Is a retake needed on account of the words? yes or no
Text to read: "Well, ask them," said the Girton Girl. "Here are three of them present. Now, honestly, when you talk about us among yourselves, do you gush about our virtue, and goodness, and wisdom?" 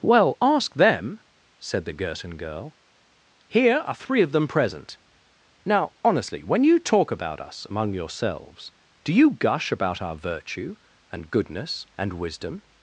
no